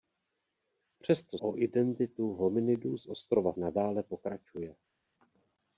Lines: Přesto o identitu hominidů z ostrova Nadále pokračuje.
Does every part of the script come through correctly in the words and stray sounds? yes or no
yes